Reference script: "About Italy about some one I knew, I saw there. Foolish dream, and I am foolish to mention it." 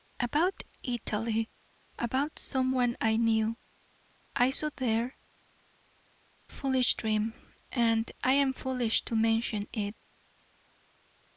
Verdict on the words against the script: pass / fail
pass